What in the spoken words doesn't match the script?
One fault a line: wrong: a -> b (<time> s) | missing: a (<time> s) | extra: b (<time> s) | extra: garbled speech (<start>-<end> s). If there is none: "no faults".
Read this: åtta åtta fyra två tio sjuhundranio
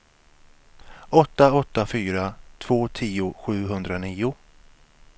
no faults